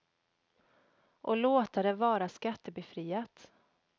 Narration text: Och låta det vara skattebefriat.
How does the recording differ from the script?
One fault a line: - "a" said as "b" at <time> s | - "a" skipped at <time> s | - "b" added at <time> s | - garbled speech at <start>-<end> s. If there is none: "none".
none